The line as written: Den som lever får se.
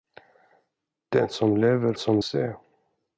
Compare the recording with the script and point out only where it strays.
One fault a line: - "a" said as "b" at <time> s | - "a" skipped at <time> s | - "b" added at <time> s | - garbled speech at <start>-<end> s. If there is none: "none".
- "får" said as "som" at 2.0 s